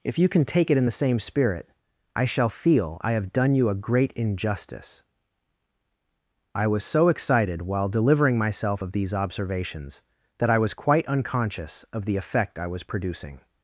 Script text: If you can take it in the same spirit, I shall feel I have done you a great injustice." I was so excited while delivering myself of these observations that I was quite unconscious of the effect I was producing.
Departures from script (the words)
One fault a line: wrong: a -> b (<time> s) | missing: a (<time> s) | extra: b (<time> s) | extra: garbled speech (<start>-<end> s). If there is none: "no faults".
no faults